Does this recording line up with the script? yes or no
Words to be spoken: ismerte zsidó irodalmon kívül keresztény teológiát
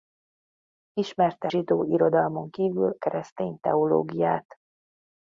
yes